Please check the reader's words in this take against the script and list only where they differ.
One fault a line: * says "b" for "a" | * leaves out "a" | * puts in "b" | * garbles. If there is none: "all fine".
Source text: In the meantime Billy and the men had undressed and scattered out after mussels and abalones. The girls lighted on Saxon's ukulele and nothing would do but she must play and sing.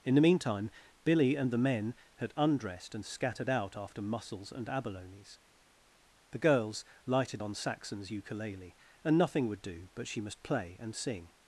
all fine